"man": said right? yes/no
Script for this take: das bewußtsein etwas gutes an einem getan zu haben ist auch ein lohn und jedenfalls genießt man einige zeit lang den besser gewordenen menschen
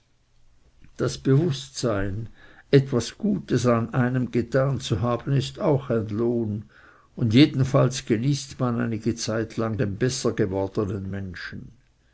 yes